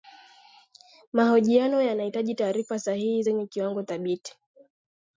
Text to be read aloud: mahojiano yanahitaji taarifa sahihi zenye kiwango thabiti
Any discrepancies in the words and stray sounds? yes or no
no